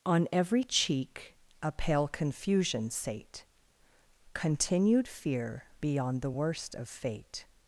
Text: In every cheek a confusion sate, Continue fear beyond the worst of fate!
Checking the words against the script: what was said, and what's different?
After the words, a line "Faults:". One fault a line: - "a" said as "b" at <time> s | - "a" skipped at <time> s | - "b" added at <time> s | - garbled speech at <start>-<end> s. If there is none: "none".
On every cheek a pale confusion sate, Continued fear beyond the worst of fate!
Faults:
- "In" said as "On" at 0.1 s
- "pale" added at 1.7 s
- "Continue" said as "Continued" at 4.3 s